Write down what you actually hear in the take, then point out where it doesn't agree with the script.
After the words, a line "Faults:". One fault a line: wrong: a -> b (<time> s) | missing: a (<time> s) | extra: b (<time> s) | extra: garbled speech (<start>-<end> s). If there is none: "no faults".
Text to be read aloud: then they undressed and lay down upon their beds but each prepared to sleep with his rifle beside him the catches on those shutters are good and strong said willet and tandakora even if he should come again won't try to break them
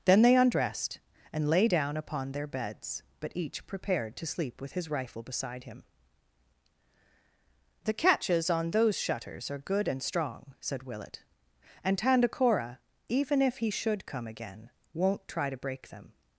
then they undressed and lay down upon their beds but each prepared to sleep with his rifle beside him the catches on those shutters are good and strong said willet and tandakora even if he should come again won't try to break them
Faults:
no faults